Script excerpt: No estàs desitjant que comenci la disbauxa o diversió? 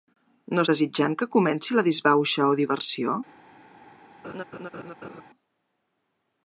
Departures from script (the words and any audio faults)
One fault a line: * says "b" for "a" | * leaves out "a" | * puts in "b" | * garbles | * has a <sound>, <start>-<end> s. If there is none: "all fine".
* leaves out "estàs"
* has a laugh, 4.2-5.2 s